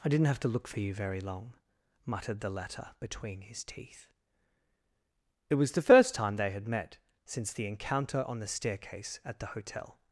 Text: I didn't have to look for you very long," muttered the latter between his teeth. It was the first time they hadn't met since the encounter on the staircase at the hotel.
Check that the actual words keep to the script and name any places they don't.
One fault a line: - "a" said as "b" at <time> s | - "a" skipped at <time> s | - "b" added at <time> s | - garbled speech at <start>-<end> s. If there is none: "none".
- "hadn't" said as "had" at 6.5 s